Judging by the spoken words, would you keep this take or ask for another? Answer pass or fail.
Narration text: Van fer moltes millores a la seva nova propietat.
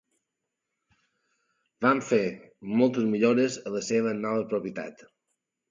pass